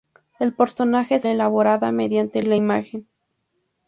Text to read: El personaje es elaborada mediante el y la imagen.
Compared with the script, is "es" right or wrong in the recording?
right